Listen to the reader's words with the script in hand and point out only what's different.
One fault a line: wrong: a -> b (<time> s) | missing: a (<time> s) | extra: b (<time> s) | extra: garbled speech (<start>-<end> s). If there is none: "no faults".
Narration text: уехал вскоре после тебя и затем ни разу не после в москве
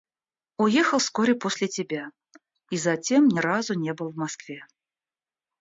wrong: после -> был (3.9 s)